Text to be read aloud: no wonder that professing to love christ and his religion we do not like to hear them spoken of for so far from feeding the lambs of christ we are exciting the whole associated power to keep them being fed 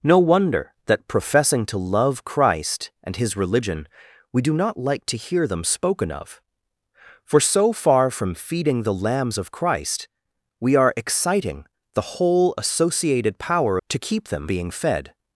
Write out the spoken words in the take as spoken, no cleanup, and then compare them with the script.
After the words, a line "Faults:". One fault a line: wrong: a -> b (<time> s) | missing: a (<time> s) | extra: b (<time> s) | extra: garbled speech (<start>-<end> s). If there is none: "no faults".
no wonder that professing to love christ and his religion we do not like to hear them spoken of for so far from feeding the lambs of christ we are exciting the whole associated power to keep them being fed
Faults:
no faults